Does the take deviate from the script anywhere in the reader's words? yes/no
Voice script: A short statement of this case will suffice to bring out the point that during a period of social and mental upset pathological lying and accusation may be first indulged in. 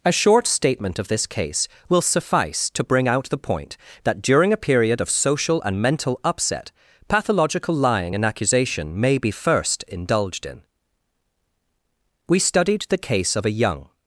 yes